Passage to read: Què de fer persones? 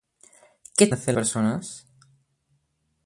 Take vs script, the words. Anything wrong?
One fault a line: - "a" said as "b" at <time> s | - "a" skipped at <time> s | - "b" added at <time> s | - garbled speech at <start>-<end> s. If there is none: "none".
none